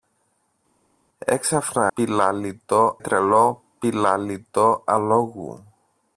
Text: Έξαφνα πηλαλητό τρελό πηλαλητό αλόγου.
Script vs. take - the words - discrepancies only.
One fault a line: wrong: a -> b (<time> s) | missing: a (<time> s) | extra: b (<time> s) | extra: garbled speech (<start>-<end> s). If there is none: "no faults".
no faults